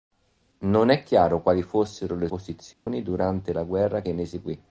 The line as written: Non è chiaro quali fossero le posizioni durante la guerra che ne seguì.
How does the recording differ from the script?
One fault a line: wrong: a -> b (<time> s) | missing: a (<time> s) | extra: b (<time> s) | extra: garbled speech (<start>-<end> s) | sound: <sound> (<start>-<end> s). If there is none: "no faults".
sound: dropout (2.7-2.9 s)